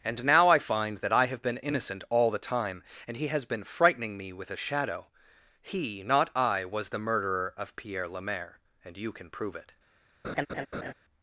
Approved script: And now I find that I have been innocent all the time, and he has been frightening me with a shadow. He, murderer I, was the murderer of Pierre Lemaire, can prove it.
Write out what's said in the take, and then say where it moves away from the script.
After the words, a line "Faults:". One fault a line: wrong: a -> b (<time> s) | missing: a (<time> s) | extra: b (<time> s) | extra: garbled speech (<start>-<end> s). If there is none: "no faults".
And now I find that I have been innocent all the time, and he has been frightening me with a shadow. He, not I, was the murderer of Pierre Lemaire, and you can prove it.
Faults:
wrong: murderer -> not (6.0 s)
extra: and you (8.8 s)